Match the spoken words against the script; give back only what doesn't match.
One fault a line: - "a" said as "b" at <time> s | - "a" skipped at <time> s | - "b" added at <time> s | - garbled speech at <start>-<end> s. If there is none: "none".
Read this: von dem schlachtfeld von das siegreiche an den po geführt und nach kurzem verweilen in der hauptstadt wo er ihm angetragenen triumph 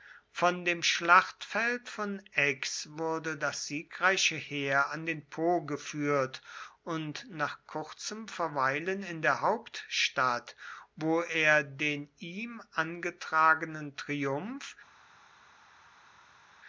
- "aix wurde" added at 2.4 s
- "heer" added at 4.3 s
- "den" added at 11.6 s